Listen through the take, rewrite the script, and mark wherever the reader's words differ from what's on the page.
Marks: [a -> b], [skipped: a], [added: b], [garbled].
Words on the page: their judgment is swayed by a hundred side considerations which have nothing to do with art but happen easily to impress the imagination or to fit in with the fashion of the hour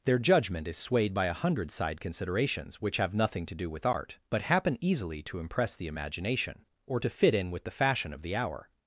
their judgment is swayed by a hundred side considerations which have nothing to do with art but happen easily to impress the imagination or to fit in with the fashion of the hour